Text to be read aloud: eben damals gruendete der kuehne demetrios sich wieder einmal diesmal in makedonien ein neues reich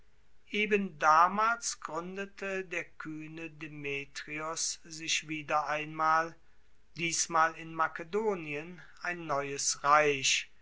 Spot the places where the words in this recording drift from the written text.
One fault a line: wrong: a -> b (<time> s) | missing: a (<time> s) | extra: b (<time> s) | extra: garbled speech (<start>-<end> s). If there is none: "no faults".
no faults